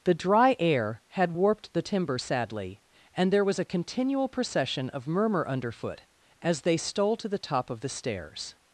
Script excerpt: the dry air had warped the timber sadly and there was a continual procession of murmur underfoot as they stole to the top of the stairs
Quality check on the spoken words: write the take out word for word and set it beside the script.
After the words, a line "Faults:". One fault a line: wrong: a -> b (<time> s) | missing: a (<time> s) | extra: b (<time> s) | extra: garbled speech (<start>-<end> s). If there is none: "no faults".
the dry air had warped the timber sadly and there was a continual procession of murmur underfoot as they stole to the top of the stairs
Faults:
no faults